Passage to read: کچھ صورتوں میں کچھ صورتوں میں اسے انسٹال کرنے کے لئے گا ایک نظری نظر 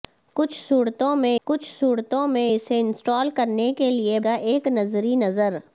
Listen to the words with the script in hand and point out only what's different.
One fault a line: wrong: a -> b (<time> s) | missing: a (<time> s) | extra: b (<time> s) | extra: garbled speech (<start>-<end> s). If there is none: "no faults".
no faults